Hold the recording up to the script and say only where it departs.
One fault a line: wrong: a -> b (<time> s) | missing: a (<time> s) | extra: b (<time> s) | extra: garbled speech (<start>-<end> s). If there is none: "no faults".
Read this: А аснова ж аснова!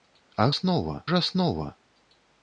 no faults